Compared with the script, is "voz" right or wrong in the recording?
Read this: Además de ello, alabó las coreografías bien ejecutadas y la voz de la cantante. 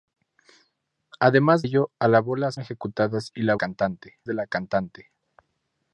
wrong